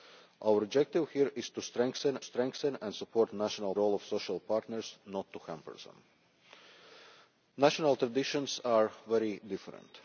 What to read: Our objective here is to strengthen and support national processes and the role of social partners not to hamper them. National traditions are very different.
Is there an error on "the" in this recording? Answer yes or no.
yes